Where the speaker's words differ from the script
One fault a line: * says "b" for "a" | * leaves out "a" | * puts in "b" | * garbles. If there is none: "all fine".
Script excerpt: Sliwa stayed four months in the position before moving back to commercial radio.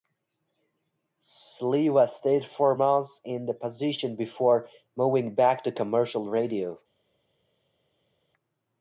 all fine